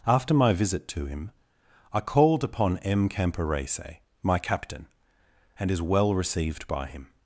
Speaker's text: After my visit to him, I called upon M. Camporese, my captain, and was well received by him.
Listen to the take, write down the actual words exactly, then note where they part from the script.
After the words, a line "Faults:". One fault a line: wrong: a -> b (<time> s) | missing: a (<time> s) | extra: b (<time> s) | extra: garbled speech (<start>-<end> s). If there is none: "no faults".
After my visit to him, I called upon M. Camporese, my captain, and is well received by him.
Faults:
wrong: was -> is (5.7 s)